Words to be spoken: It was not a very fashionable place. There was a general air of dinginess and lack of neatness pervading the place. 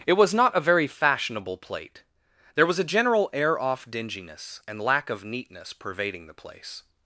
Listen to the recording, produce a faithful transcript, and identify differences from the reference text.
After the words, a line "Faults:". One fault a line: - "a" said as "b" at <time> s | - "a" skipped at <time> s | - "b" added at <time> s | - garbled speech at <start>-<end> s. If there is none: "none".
It was not a very fashionable plate. There was a general air off dinginess and lack of neatness pervading the place.
Faults:
- "place" said as "plate" at 1.6 s
- "of" said as "off" at 3.6 s